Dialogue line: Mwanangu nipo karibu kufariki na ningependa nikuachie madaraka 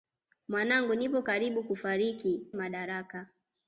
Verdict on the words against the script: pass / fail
fail